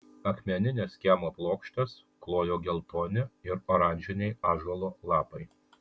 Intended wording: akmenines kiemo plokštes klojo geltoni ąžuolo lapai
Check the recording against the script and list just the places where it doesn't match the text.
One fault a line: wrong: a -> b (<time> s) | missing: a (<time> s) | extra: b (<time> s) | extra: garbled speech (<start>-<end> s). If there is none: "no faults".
extra: ir oranžiniai (3.5 s)